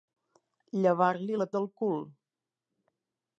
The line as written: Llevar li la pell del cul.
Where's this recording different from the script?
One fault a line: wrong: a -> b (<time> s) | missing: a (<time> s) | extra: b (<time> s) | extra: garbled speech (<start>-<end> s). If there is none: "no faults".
missing: pell (1.5 s)